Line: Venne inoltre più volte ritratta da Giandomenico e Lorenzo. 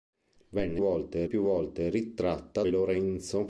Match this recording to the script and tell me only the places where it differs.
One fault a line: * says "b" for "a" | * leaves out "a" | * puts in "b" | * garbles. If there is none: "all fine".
* says "volte" for "inoltre"
* leaves out "da Giandomenico"